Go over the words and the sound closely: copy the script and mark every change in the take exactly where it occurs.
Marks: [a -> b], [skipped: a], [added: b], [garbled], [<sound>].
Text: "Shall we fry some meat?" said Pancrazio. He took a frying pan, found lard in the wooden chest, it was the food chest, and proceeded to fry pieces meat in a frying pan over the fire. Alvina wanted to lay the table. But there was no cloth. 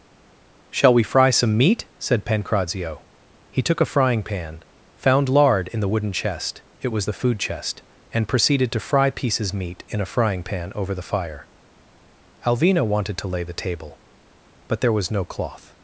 "Shall we fry some meat?" said Pancrazio. He took a frying pan, found lard in the wooden chest, it was the food chest, and proceeded to fry pieces meat in a frying pan over the fire. Alvina wanted to lay the table. But there was no cloth.